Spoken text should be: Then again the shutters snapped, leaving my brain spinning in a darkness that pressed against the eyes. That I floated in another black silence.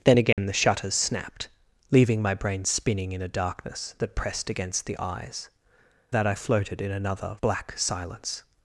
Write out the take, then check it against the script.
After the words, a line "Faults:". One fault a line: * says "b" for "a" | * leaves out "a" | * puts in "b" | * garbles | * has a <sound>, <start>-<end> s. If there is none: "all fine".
Then again the shutters snapped, leaving my brain spinning in a darkness that pressed against the eyes. That I floated in another black silence.
Faults:
* has a dropout, 0.3-0.4 s